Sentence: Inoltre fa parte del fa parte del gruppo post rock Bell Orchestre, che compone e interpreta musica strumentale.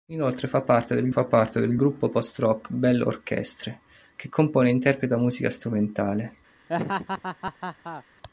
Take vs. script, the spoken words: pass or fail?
pass